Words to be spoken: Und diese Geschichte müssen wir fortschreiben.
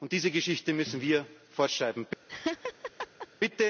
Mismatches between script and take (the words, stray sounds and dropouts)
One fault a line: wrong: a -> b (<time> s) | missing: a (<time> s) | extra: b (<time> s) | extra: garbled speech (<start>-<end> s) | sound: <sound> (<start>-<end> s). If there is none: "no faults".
sound: laugh (2.3-3.3 s)